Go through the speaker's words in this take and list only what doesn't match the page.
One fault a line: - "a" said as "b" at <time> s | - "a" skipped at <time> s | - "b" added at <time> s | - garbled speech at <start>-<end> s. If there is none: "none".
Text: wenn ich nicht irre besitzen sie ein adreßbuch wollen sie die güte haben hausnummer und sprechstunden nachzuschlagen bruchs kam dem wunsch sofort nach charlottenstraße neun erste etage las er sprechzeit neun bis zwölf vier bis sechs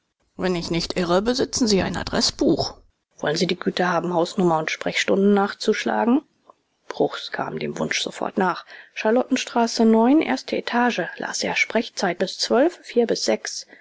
- "neun" skipped at 12.2 s